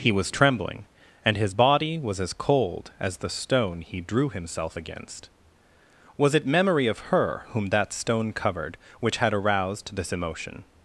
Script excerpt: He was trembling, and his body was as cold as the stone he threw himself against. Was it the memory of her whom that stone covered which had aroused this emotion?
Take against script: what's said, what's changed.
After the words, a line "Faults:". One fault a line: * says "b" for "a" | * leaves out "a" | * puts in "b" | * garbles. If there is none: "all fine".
He was trembling, and his body was as cold as the stone he drew himself against. Was it memory of her whom that stone covered which had aroused this emotion?
Faults:
* says "drew" for "threw"
* leaves out "the"